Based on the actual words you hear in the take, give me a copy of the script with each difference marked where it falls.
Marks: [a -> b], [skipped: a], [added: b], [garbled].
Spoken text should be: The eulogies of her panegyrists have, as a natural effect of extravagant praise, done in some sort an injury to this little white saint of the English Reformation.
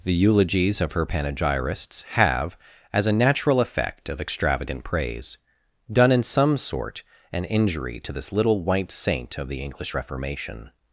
The eulogies of her panegyrists have, as a natural effect of extravagant praise, done in some sort an injury to this little white saint of the English Reformation.